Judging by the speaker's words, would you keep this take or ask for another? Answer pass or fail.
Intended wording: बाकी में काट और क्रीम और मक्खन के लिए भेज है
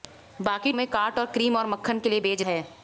pass